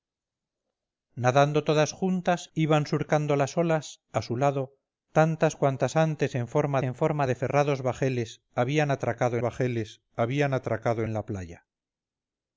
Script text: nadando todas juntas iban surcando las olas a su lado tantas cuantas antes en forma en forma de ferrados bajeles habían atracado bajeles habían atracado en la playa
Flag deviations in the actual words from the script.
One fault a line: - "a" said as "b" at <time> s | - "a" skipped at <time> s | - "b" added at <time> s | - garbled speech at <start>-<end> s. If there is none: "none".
none